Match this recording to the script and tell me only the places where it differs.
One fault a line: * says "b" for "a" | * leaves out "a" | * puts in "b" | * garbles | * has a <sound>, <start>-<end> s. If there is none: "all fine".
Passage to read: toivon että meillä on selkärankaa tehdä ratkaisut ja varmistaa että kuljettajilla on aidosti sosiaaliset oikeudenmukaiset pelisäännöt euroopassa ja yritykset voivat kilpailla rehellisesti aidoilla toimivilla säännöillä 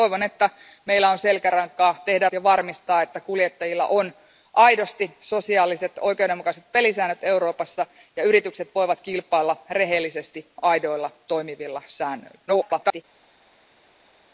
* leaves out "ratkaisut"
* garbles